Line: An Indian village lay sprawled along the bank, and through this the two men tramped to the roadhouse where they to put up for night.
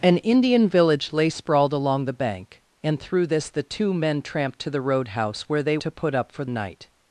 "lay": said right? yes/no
yes